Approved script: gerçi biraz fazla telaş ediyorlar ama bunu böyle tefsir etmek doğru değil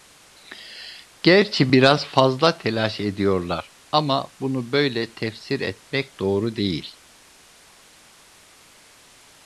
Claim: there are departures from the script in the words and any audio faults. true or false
false